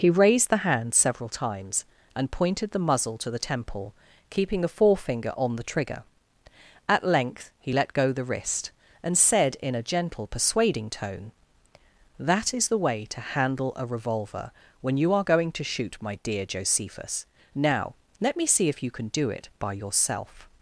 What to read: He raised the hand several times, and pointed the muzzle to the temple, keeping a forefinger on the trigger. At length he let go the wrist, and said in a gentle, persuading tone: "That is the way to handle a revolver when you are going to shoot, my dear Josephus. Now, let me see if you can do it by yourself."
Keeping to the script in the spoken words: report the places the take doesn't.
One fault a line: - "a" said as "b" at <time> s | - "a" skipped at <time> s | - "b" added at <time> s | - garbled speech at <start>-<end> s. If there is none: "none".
none